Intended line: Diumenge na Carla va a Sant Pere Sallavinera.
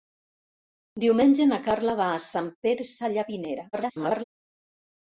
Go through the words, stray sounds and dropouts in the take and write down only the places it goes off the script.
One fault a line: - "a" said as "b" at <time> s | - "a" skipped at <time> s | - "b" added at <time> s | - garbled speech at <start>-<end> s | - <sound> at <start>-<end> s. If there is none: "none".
- garbled speech at 3.7-4.2 s